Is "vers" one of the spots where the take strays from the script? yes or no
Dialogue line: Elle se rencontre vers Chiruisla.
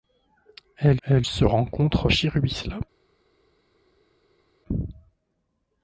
yes